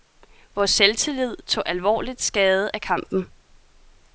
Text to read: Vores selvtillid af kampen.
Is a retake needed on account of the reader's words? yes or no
yes